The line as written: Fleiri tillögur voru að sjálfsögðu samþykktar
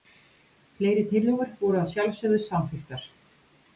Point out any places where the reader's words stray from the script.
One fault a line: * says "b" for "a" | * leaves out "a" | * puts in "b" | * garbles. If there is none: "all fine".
all fine